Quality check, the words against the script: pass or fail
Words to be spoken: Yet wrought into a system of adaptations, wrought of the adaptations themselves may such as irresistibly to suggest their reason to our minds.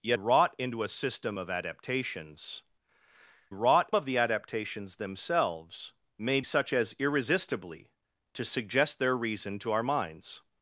pass